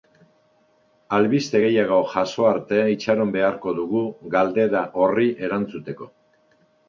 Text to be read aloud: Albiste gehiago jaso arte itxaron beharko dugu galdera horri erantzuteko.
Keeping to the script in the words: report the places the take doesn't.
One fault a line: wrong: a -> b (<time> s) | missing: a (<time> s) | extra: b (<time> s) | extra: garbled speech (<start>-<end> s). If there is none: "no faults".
no faults